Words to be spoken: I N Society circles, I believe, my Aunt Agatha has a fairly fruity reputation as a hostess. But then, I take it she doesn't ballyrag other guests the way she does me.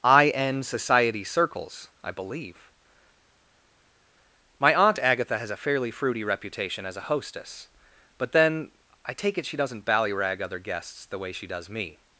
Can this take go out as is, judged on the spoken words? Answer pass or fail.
pass